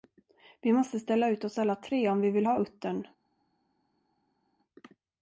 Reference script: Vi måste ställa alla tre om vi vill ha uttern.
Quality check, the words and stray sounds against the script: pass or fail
fail